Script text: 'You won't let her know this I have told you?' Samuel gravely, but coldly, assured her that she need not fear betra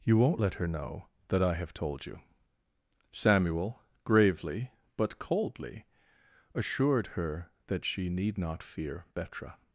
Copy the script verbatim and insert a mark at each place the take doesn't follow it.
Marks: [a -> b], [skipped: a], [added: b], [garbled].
'You won't let her know [this -> that] I have told you?' Samuel gravely, but coldly, assured her that she need not fear betra